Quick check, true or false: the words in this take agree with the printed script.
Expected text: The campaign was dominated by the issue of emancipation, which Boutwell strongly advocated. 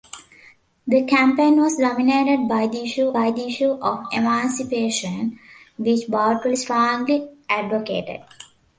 false